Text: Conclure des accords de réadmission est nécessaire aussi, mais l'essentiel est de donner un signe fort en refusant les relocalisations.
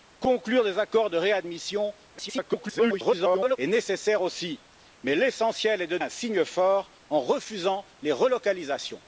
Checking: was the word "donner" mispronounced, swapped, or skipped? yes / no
yes